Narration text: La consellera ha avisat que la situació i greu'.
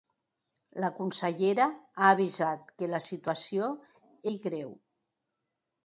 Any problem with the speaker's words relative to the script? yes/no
no